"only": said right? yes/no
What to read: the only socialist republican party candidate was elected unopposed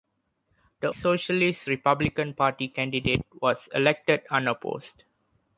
no